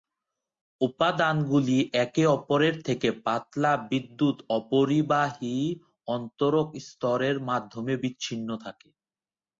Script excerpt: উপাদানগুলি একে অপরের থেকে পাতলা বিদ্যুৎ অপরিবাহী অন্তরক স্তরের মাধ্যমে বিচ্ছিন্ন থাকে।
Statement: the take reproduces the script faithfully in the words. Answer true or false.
true